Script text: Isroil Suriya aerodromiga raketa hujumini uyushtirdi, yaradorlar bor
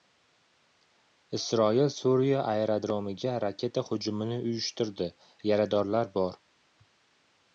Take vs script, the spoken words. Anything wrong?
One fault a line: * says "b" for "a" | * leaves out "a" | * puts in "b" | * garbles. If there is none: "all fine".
all fine